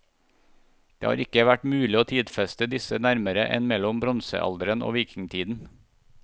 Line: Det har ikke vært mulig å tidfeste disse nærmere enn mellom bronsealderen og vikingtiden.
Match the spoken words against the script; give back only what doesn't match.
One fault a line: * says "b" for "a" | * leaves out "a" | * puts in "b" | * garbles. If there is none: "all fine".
all fine